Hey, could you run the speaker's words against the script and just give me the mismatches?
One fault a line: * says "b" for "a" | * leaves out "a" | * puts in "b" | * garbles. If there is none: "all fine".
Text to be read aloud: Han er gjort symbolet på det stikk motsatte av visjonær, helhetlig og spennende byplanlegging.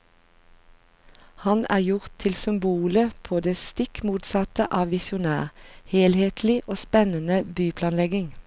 * puts in "til"